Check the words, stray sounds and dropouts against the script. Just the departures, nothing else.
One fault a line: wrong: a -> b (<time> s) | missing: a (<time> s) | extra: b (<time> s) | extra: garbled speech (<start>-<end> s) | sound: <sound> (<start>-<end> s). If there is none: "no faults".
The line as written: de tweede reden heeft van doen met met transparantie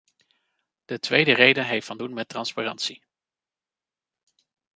missing: met (2.3 s)